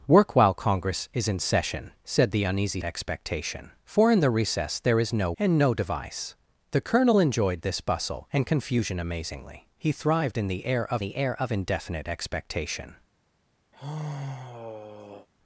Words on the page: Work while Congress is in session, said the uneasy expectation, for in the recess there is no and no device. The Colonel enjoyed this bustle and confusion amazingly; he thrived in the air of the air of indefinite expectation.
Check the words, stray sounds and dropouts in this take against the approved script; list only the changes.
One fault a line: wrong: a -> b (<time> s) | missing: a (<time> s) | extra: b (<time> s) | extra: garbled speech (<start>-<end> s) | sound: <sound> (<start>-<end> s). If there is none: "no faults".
sound: sigh (13.7-15.3 s)